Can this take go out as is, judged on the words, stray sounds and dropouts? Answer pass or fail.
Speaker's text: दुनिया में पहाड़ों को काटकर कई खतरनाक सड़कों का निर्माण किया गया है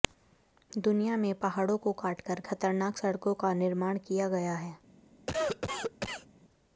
fail